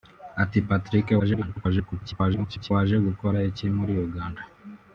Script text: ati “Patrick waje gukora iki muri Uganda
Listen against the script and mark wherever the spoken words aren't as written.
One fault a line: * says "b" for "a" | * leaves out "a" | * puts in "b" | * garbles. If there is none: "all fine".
* garbles